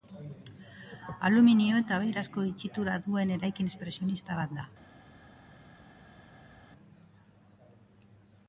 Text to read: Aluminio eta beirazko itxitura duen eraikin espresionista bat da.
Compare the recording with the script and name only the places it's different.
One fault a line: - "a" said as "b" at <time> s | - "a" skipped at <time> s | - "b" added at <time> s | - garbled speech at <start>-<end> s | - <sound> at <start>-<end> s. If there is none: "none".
none